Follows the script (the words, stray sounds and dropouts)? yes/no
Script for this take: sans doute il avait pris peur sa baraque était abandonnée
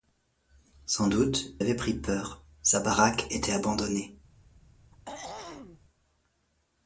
no